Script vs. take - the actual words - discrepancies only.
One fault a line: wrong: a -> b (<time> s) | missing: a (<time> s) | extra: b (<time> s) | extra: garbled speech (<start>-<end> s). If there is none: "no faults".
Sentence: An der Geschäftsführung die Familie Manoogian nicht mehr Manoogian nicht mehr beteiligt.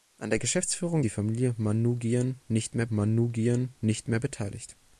no faults